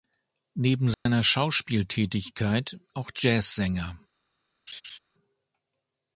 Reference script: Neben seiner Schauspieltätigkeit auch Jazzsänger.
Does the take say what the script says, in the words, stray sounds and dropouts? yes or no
no